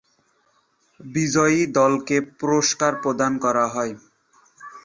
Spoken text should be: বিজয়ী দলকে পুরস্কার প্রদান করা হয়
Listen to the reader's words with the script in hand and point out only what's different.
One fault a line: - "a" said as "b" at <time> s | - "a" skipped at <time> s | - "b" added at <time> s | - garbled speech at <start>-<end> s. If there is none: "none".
none